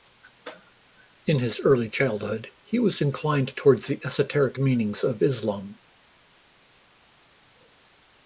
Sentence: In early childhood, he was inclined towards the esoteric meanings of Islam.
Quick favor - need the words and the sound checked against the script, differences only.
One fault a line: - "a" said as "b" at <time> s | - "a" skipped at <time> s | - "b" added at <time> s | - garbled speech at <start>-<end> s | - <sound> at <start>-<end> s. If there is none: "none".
- "his" added at 1.4 s